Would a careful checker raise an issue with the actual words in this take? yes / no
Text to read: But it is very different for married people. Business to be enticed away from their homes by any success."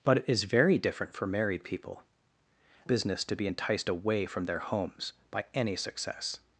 no